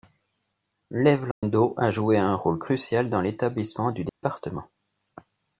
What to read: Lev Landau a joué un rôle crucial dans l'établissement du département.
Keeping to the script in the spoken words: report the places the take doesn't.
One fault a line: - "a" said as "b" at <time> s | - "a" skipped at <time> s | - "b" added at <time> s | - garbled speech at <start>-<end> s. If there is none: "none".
none